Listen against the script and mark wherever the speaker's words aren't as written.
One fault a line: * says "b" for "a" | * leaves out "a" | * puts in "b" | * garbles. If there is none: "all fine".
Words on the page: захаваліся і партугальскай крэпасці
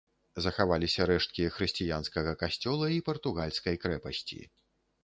* puts in "рэшткі хрысціянскага касцёла"